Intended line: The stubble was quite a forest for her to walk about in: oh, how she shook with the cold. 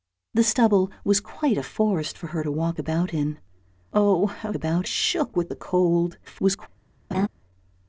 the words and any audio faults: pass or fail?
fail